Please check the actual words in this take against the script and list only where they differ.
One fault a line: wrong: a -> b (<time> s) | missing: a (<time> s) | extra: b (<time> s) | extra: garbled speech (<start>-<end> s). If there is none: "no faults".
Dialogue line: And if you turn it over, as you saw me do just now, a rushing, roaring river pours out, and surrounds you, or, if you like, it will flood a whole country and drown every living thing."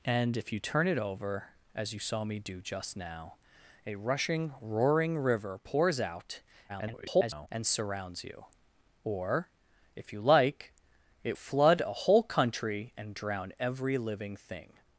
extra: garbled speech (6.7-7.5 s)
missing: will (11.4 s)